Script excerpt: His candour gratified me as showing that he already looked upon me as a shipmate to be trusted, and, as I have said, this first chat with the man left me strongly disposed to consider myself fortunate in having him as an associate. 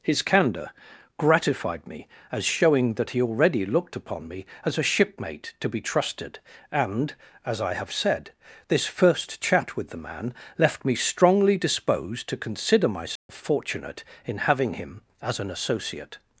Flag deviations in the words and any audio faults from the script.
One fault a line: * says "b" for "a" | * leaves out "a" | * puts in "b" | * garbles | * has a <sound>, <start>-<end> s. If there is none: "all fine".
* has a dropout, 13.2-13.3 s